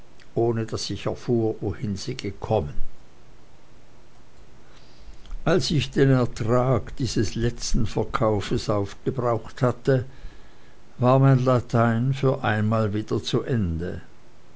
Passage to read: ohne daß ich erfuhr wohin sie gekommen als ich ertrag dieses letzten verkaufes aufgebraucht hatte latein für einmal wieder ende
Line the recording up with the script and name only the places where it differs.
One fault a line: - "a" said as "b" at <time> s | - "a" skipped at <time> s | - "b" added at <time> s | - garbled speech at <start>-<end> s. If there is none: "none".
- "den" added at 5.9 s
- "war mein" added at 11.0 s
- "zu" added at 13.2 s